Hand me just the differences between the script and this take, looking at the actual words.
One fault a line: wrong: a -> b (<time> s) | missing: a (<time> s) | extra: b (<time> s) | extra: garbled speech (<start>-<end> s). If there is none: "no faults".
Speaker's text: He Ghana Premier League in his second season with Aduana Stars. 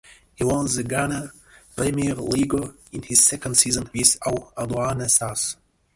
extra: won the (0.4 s)